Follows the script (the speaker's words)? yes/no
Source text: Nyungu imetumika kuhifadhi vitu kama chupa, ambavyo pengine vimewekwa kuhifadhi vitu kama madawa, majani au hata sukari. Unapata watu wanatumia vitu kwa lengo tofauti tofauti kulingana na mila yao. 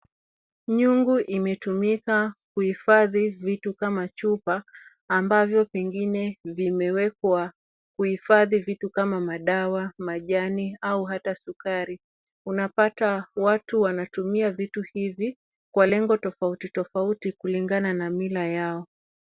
no